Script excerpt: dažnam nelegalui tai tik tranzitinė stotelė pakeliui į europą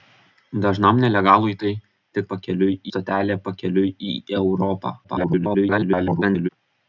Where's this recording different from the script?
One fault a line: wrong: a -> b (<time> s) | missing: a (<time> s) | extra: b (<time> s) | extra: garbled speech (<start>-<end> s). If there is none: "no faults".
wrong: tranzitinė -> pakeliui (2.3 s)
extra: garbled speech (5.0-6.5 s)